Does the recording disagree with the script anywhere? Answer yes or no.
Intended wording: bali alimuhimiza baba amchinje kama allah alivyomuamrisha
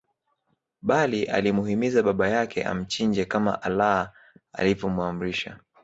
yes